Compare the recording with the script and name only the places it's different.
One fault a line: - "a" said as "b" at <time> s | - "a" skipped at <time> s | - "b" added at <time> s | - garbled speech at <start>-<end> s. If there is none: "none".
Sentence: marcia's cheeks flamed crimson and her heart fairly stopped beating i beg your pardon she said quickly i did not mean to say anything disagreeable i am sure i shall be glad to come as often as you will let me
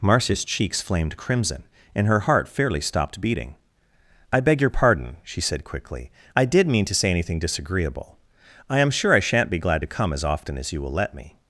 - "not" skipped at 6.7 s
- "shall" said as "shan't" at 9.2 s